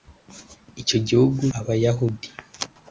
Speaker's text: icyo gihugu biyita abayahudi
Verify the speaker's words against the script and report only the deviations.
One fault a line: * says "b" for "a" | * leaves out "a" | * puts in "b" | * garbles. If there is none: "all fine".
* leaves out "biyita"